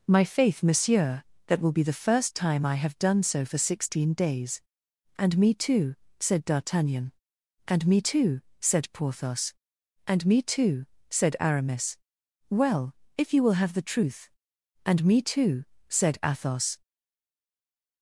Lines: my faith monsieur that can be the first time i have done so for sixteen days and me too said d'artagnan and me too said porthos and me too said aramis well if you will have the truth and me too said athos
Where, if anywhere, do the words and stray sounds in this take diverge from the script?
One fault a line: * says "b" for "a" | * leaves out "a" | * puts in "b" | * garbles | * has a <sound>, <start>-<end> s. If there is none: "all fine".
* says "will" for "can"